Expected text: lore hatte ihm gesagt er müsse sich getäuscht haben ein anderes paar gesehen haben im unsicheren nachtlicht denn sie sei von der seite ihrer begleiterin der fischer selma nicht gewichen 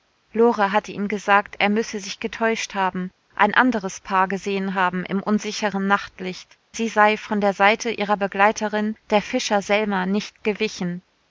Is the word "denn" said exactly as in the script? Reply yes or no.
no